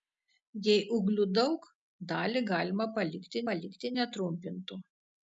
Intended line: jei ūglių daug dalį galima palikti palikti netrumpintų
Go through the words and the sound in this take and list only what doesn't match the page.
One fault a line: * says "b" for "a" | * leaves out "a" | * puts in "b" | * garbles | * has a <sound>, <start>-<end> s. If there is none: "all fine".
all fine